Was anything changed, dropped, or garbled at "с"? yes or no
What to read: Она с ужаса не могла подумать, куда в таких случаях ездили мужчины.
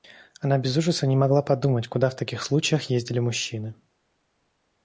yes